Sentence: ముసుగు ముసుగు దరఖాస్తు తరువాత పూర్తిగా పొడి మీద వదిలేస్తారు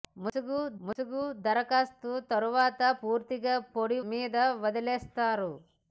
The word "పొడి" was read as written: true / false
true